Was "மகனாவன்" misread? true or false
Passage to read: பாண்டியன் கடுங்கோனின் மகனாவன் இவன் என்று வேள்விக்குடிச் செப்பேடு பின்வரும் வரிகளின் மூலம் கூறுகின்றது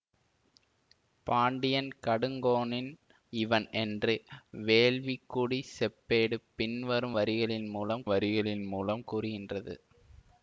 true